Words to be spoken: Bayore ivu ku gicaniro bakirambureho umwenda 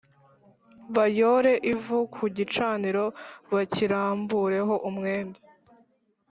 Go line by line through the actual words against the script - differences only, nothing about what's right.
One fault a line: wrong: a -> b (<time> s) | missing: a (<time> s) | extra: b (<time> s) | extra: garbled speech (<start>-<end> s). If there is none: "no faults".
no faults